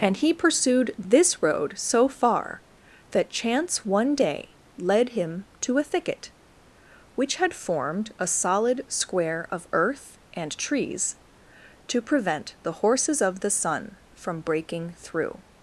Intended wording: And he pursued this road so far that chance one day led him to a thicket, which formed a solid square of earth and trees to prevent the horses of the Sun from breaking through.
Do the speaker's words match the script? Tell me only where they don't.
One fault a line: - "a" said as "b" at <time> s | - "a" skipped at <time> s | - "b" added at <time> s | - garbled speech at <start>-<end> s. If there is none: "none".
- "had" added at 7.3 s